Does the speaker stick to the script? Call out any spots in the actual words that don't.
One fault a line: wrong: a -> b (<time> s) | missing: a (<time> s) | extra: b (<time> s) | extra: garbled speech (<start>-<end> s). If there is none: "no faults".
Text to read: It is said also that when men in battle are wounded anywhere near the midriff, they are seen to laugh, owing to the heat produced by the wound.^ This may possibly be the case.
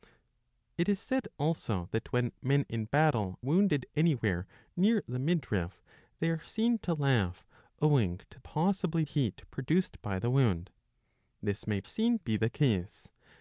missing: are (3.4 s)
wrong: the -> possibly (8.4 s)
wrong: possibly -> seen (11.8 s)